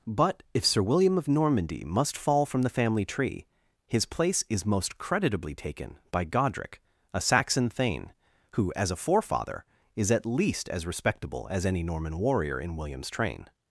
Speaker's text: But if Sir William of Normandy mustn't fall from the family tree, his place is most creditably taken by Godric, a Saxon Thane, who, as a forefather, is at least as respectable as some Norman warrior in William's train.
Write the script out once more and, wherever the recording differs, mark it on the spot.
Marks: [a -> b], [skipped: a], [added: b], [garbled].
But if Sir William of Normandy [mustn't -> must] fall from the family tree, his place is most creditably taken by Godric, a Saxon Thane, who, as a forefather, is at least as respectable as [some -> any] Norman warrior in William's train.